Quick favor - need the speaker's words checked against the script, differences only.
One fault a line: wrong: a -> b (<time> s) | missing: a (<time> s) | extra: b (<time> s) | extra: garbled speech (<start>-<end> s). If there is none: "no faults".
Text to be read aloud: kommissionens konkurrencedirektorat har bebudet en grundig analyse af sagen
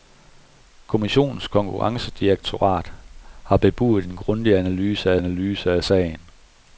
extra: analyse af (5.2 s)